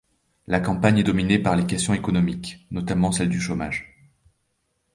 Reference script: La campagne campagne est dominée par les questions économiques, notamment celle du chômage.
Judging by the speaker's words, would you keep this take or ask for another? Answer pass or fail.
fail